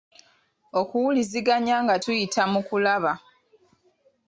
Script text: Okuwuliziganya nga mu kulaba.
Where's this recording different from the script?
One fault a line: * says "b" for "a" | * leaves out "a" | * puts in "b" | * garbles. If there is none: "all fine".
* puts in "tuyita"